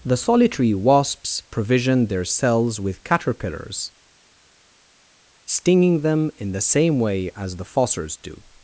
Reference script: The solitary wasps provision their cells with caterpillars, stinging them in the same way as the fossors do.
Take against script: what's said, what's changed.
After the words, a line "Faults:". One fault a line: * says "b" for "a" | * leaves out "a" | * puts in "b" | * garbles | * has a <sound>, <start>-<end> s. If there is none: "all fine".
The solitary wasps provision their cells with caterpillars, stinging them in the same way as the fossors do.
Faults:
all fine